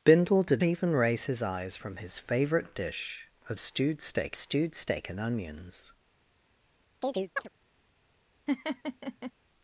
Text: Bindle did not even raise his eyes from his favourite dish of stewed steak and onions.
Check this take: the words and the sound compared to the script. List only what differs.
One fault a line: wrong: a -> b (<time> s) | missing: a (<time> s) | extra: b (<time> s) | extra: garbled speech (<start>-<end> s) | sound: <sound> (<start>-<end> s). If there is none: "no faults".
missing: not (0.6 s)
extra: stewed steak (4.4 s)
sound: chirp (7.0-7.5 s)
sound: laugh (8.5-9.3 s)